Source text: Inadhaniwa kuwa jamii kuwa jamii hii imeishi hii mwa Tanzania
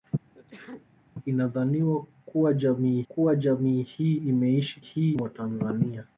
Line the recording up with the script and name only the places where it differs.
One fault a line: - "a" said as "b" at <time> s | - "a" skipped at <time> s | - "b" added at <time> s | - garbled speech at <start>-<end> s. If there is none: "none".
none